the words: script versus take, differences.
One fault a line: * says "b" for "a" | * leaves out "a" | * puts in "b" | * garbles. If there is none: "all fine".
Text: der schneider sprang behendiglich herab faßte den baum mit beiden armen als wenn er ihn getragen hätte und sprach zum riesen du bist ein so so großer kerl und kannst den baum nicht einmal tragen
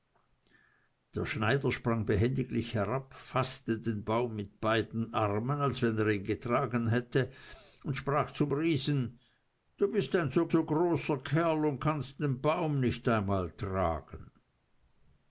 all fine